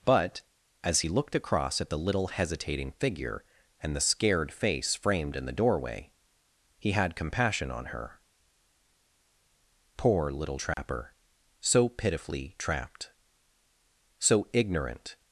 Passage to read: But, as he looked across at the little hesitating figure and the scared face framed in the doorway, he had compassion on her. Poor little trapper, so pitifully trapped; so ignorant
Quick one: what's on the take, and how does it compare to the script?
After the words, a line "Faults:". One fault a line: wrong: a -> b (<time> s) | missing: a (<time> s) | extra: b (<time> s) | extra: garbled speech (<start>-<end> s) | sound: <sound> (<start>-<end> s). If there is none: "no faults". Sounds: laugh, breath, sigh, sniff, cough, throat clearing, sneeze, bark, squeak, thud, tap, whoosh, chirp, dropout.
But, as he looked across at the little hesitating figure and the scared face framed in the doorway, he had compassion on her. Poor little trapper, so pitifully trapped; so ignorant
Faults:
sound: dropout (10.7-10.8 s)